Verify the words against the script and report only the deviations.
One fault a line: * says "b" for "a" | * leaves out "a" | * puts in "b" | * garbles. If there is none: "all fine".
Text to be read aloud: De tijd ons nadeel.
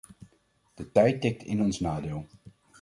* puts in "tikt in"